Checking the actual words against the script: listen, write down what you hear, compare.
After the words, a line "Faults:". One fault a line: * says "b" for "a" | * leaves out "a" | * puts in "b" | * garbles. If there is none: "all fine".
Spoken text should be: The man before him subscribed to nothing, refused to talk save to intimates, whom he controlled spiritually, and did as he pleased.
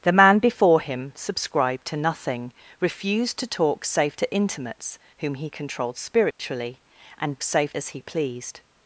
The man before him subscribed to nothing, refused to talk save to intimates, whom he controlled spiritually, and save as he pleased.
Faults:
* says "save" for "did"